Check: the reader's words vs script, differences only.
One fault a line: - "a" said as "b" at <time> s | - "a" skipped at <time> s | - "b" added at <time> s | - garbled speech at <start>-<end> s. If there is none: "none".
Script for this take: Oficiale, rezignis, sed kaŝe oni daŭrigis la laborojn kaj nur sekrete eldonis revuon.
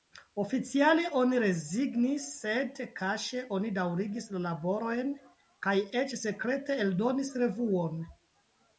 - "oni" added at 1.2 s
- "nur" said as "eĉ" at 6.0 s